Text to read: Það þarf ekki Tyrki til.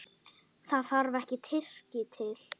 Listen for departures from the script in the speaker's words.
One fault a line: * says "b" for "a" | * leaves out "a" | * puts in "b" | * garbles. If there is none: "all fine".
all fine